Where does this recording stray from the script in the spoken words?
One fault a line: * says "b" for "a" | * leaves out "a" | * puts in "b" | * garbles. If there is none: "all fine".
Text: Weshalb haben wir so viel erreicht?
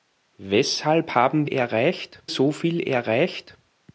* says "erreicht" for "wir"